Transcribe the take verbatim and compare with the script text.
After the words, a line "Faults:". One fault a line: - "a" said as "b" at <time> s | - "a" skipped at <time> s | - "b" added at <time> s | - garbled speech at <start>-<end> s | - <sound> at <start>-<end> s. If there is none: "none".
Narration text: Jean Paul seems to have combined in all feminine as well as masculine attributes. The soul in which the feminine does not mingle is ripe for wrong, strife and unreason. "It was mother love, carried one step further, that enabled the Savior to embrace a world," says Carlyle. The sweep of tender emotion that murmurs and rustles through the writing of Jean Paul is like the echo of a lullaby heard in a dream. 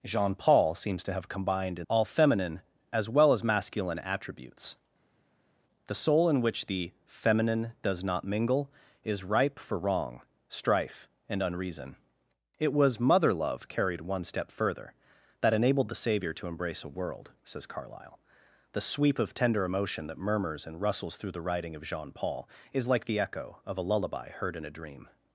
Jean Paul seems to have combined in all feminine as well as masculine attributes. The soul in which the feminine does not mingle is ripe for wrong, strife and unreason. "It was mother love, carried one step further, that enabled the Savior to embrace a world," says Carlyle. The sweep of tender emotion that murmurs and rustles through the writing of Jean Paul is like the echo of a lullaby heard in a dream.
Faults:
none